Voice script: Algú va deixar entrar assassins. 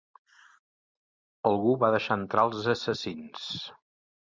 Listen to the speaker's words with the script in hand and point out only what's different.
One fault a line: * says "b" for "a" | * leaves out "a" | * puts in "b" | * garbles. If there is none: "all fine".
* puts in "els"